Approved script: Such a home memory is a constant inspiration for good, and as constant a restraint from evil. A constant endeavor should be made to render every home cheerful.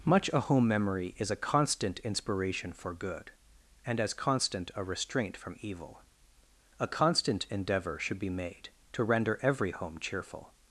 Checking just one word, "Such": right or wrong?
wrong